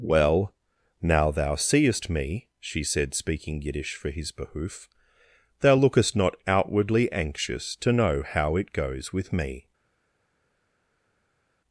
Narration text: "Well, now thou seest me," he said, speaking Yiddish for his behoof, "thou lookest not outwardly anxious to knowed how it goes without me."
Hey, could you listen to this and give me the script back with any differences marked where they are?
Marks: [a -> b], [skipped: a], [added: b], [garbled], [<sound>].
"Well, now thou seest me," [he -> she] said, speaking Yiddish for his behoof, "thou lookest not outwardly anxious to [knowed -> know] how it goes [without -> with] me."